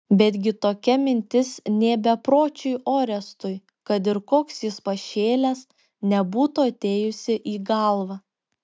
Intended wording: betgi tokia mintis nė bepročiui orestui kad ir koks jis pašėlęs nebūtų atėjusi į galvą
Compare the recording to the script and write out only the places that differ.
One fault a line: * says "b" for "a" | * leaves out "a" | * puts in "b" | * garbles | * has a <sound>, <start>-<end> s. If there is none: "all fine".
all fine